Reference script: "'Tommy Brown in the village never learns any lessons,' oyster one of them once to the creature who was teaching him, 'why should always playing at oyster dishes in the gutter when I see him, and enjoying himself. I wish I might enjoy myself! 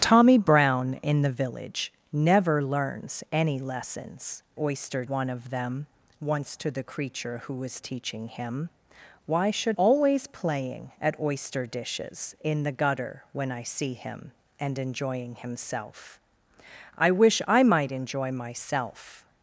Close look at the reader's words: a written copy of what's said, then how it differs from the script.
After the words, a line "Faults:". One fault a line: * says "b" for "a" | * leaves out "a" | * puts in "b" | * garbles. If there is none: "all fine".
"'Tommy Brown in the village never learns any lessons,' oyster one of them once to the creature who was teaching him, 'why should always playing at oyster dishes in the gutter when I see him, and enjoying himself. I wish I might enjoy myself!
Faults:
all fine